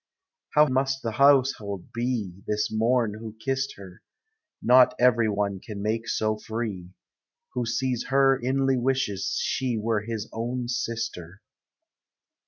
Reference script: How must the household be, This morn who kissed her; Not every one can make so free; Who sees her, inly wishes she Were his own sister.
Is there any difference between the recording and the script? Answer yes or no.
no